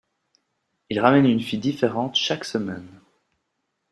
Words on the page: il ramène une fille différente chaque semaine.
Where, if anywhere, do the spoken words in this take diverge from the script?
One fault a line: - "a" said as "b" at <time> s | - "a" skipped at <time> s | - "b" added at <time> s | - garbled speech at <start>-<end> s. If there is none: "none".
none